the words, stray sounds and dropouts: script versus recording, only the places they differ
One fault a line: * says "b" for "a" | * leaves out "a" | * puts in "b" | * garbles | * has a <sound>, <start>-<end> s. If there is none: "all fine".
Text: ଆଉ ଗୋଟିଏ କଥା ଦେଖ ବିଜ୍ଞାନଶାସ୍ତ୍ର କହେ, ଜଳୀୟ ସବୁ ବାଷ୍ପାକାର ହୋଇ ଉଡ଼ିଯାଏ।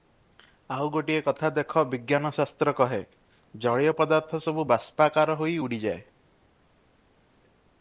* puts in "ପଦାର୍ଥ"